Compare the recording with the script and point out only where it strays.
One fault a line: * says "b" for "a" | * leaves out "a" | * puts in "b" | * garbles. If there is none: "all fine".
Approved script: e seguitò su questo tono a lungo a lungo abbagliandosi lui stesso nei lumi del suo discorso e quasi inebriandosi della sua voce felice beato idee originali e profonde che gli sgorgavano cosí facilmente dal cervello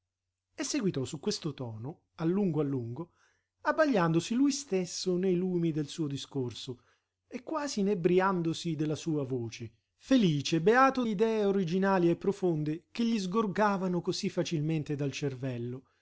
all fine